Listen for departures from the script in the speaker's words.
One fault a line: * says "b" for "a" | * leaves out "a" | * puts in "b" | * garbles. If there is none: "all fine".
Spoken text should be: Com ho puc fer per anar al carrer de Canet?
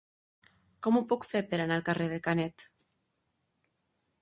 all fine